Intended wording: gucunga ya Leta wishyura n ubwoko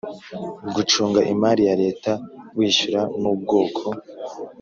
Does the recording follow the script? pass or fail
fail